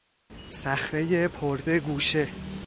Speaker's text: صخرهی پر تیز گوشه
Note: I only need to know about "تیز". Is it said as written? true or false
false